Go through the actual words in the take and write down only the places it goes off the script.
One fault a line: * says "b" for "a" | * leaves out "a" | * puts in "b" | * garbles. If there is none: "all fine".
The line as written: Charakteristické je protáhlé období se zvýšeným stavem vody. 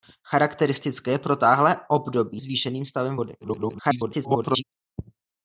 * leaves out "se"
* garbles